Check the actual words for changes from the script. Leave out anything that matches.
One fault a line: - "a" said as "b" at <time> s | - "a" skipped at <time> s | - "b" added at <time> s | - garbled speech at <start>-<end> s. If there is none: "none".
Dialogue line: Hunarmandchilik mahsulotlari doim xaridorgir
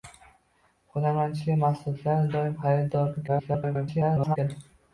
- garbled speech at 3.3-4.4 s